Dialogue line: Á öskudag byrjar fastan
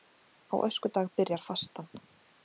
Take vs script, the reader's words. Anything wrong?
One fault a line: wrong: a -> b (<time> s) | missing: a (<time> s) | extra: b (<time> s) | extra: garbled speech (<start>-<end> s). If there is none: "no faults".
no faults